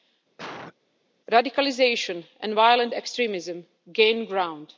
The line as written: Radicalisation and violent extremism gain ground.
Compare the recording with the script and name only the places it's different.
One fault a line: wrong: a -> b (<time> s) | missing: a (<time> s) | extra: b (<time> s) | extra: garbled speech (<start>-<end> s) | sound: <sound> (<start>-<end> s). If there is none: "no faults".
sound: cough (0.4-0.7 s)